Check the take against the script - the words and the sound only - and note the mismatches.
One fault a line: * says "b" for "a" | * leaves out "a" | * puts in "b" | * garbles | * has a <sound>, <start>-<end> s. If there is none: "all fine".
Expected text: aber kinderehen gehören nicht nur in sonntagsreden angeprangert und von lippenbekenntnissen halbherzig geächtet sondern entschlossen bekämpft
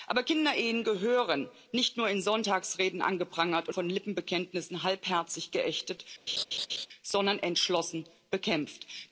* has a laugh, 6.3-6.9 s